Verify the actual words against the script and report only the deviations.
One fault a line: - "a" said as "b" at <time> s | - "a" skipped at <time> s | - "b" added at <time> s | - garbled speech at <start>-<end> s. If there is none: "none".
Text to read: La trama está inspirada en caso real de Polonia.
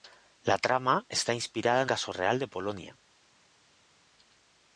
none